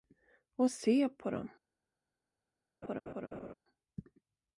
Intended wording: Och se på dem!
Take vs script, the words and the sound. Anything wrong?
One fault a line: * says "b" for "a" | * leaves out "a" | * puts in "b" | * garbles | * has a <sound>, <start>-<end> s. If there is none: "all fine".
* has a laugh, 2.8-3.5 s